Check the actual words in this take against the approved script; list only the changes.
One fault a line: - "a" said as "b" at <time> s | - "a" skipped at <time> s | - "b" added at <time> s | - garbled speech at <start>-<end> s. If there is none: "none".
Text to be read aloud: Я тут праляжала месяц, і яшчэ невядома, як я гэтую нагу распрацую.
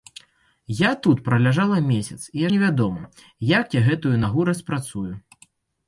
- "яшчэ" skipped at 2.5 s